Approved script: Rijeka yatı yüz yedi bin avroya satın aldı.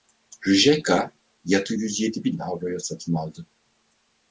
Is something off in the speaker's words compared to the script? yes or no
no